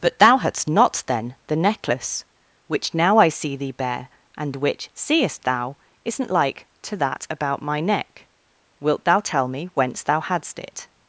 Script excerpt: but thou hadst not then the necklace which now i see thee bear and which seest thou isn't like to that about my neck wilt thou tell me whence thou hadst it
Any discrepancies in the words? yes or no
no